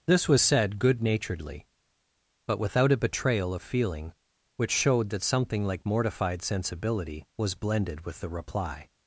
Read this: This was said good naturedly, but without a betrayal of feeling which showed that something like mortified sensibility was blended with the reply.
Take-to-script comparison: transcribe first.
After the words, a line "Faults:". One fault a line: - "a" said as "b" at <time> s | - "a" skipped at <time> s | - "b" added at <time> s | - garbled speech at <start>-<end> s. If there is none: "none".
This was said good naturedly, but without a betrayal of feeling which showed that something like mortified sensibility was blended with the reply.
Faults:
none